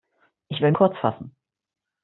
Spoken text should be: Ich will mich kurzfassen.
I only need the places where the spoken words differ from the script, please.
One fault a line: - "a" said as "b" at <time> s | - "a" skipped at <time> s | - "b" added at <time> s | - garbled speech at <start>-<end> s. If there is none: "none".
- "mich" skipped at 0.7 s